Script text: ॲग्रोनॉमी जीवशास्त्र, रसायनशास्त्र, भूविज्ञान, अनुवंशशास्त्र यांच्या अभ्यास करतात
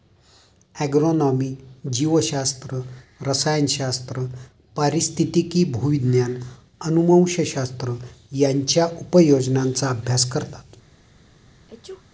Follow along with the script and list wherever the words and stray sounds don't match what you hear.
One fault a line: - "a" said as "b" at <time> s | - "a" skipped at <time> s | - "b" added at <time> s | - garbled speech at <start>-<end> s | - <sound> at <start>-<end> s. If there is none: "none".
- "पारिस्थितिकी" added at 4.8 s
- "उपयोजनांचा" added at 8.9 s
- sneeze at 11.7-12.0 s